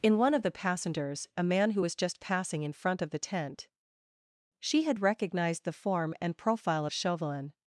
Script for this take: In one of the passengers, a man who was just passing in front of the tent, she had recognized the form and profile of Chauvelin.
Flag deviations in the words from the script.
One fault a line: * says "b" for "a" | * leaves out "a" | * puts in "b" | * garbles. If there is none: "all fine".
all fine